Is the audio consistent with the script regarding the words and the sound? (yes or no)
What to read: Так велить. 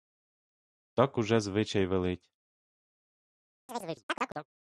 no